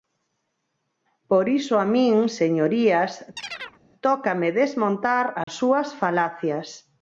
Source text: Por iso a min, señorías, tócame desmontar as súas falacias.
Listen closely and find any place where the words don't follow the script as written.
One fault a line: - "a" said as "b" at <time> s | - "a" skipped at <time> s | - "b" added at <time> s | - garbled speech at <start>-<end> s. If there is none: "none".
none